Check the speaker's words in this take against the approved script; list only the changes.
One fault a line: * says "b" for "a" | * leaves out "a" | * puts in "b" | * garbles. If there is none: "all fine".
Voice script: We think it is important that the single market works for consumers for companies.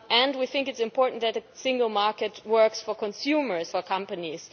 all fine